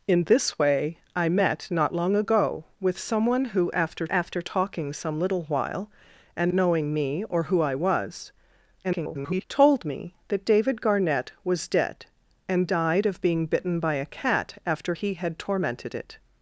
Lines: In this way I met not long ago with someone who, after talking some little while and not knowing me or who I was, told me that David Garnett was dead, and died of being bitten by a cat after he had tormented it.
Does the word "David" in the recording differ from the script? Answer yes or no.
no